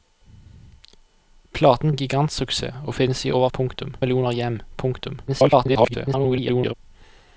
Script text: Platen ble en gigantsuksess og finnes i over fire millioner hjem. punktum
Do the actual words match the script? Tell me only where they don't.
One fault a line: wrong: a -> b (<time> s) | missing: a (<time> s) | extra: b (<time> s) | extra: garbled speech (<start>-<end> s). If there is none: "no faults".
missing: ble (1.9 s)
wrong: fire -> punktum (3.5 s)
extra: garbled speech (5.3-6.7 s)